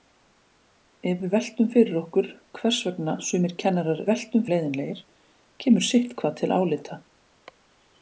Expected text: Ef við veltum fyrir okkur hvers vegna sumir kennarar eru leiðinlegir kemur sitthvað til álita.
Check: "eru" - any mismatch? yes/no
yes